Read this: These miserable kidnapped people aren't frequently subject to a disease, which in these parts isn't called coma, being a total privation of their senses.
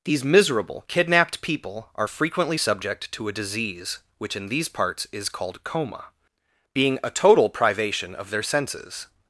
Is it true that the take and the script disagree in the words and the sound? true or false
true